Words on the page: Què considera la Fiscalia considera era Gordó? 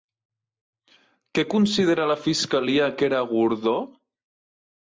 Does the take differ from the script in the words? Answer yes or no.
yes